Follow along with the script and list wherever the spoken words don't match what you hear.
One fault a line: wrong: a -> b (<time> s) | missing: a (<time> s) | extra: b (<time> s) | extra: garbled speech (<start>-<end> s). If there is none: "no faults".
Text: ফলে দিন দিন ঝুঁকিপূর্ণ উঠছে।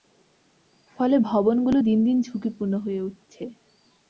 extra: ভবনগুলো (1.2 s)
extra: হয়ে (2.8 s)